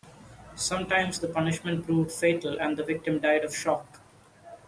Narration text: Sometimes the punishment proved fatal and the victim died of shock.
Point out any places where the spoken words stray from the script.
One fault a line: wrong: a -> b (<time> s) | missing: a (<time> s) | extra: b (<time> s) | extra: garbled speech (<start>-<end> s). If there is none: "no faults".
no faults